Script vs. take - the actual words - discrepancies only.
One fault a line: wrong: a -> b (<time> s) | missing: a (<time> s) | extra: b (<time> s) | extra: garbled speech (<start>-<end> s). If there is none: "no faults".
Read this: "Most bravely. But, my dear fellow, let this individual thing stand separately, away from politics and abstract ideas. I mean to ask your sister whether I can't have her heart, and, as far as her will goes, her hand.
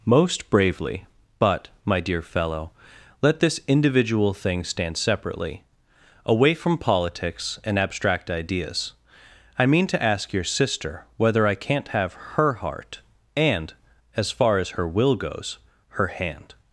no faults